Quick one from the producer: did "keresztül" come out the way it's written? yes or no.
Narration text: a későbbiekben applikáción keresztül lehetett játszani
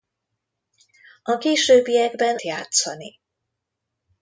no